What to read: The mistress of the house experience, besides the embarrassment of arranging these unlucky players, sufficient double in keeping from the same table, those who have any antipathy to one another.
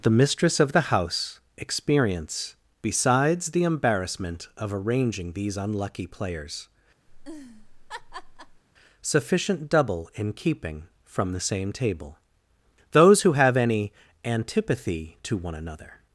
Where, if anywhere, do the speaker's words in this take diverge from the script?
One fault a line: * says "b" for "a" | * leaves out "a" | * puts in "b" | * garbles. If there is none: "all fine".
all fine